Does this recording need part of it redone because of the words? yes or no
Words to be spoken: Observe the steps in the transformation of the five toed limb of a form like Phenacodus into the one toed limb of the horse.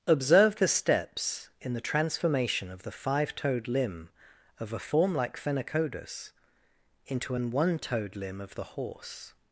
yes